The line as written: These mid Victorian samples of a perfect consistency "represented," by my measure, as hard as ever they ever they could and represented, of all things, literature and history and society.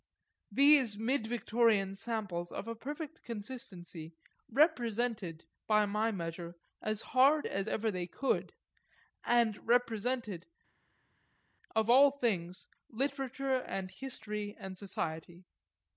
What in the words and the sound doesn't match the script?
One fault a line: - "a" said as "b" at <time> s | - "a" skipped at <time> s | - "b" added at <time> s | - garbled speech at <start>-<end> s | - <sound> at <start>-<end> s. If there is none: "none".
- "ever they" skipped at 8.1 s